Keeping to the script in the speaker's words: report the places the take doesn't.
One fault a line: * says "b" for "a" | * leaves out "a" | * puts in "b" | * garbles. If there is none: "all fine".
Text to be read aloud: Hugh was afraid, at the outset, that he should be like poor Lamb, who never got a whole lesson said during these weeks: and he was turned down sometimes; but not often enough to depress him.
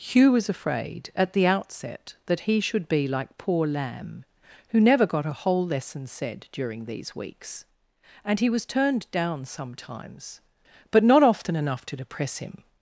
all fine